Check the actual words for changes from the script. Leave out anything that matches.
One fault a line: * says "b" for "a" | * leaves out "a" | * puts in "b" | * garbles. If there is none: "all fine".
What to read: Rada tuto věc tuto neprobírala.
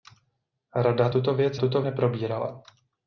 all fine